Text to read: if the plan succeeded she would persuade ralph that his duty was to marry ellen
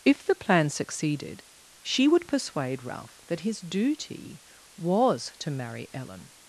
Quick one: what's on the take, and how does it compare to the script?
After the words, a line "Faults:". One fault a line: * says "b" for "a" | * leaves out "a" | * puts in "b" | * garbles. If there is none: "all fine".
if the plan succeeded she would persuade ralph that his duty was to marry ellen
Faults:
all fine